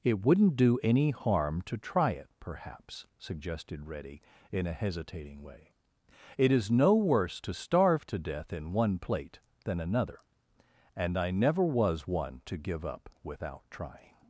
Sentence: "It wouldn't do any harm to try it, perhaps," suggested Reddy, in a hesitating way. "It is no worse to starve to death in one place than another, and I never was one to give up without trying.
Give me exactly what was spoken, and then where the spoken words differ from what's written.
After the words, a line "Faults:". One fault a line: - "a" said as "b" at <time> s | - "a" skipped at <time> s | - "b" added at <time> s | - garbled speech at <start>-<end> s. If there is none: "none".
"It wouldn't do any harm to try it, perhaps," suggested Reddy, in a hesitating way. "It is no worse to starve to death in one plate than another, and I never was one to give up without trying.
Faults:
- "place" said as "plate" at 9.0 s